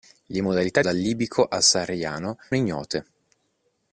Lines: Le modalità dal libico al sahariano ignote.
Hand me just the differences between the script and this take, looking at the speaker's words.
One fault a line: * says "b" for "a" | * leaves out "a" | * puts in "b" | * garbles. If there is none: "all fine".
all fine